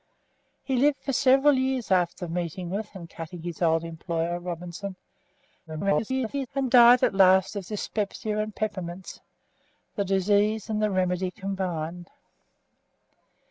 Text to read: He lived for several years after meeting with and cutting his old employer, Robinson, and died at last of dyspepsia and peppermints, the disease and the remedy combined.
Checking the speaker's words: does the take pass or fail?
fail